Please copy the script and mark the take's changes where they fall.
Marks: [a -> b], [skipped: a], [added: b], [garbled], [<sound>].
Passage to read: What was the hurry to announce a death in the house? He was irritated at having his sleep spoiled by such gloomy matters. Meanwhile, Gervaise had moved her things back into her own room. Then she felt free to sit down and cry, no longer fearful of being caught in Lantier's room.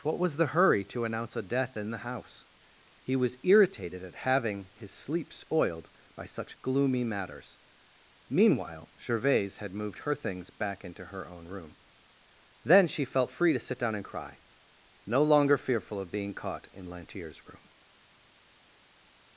What was the hurry to announce a death in the house? He was irritated at having his sleep spoiled by such gloomy matters. Meanwhile, Gervaise had moved her things back into her own room. Then she felt free to sit down and cry, no longer fearful of being caught in Lantier's room.